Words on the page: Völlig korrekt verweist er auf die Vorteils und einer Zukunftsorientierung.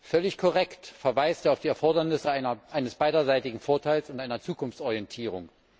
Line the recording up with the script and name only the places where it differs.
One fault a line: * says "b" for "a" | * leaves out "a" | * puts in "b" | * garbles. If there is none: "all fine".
* puts in "Erfordernisse eines beiderseitigen"